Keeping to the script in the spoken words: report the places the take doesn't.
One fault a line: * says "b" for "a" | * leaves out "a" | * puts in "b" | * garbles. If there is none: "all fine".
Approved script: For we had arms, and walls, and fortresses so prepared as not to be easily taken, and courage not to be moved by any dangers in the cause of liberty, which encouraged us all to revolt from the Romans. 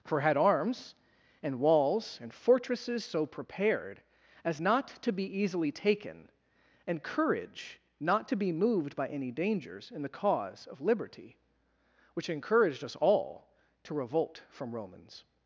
* leaves out "we"
* leaves out "the"